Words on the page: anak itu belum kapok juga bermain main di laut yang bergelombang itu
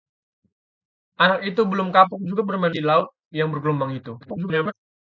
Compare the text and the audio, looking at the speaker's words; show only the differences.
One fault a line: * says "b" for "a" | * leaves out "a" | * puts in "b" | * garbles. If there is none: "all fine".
* leaves out "main"
* garbles